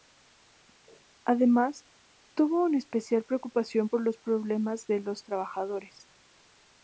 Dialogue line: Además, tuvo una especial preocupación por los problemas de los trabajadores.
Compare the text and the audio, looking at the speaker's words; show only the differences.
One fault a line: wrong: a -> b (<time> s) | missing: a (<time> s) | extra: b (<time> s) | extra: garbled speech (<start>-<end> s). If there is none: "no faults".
no faults